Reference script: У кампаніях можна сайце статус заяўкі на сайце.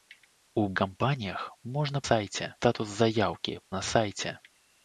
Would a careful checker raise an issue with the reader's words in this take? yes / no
no